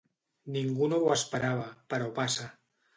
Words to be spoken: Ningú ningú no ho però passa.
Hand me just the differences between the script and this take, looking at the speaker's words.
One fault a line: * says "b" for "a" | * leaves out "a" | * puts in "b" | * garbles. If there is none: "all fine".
* leaves out "ningú"
* puts in "esperava"